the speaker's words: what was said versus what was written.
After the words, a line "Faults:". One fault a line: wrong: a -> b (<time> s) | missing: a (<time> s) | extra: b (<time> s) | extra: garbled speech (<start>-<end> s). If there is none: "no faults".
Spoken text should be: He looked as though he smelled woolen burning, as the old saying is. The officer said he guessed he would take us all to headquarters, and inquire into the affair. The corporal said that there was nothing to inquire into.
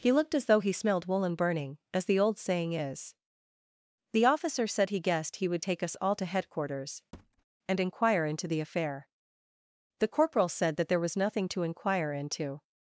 He looked as though he smelled woolen burning, as the old saying is. The officer said he guessed he would take us all to headquarters, and inquire into the affair. The corporal said that there was nothing to inquire into.
Faults:
no faults